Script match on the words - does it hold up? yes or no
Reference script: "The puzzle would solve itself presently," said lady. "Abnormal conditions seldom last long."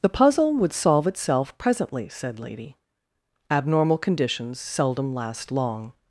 yes